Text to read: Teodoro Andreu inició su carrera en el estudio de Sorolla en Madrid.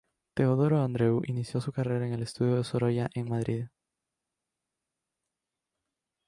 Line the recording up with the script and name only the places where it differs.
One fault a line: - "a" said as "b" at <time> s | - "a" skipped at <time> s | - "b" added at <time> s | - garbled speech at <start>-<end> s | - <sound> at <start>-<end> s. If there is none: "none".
none